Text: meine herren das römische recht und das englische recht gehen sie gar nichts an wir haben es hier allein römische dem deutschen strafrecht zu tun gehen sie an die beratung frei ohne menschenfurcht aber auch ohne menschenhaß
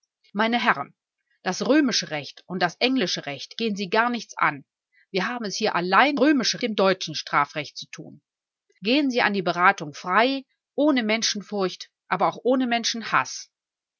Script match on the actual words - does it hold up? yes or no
yes